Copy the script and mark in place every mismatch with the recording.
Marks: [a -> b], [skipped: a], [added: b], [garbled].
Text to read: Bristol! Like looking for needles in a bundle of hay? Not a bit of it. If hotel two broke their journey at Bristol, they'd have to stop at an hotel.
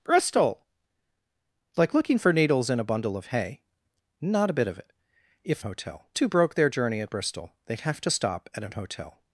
Bristol! Like looking for needles in a bundle of hay? Not a bit of it. If hotel two broke their journey at Bristol, they'd have to stop at an hotel.